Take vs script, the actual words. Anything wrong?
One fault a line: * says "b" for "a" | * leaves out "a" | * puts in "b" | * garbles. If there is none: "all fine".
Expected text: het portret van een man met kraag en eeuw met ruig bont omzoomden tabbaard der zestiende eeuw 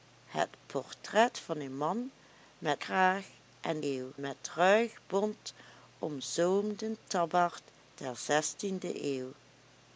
all fine